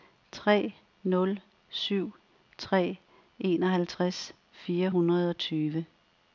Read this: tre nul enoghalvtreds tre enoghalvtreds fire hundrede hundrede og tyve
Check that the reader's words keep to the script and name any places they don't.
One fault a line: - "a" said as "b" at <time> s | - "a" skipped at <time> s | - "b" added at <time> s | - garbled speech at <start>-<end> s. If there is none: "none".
- "enoghalvtreds" said as "syv" at 1.7 s
- "hundrede" skipped at 5.3 s